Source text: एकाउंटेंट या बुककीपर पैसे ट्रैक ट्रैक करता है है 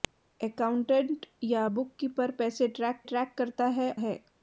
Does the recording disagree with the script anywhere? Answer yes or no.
no